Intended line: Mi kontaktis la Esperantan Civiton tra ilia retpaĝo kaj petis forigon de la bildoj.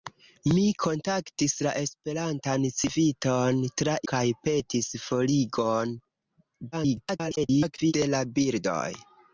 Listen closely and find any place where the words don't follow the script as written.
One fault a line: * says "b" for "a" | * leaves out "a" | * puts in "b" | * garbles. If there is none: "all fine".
* leaves out "ilia retpaĝo"
* garbles